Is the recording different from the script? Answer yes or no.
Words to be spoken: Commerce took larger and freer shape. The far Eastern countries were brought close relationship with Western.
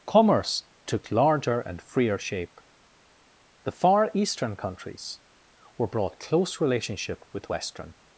no